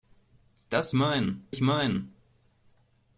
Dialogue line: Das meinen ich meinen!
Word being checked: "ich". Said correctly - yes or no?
yes